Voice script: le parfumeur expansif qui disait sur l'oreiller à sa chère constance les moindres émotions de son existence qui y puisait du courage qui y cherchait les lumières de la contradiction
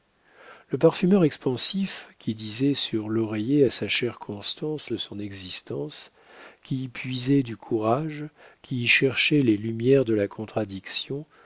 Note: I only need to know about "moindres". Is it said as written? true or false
false